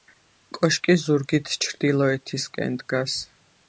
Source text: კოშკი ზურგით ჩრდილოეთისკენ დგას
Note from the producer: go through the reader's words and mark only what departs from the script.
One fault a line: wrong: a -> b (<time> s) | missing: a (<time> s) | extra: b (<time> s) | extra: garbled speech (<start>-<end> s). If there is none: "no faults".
no faults